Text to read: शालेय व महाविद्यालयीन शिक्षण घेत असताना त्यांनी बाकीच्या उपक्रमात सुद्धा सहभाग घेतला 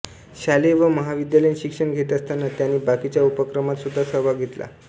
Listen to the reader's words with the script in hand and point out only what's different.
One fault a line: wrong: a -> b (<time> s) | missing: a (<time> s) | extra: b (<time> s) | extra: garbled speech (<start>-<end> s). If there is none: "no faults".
no faults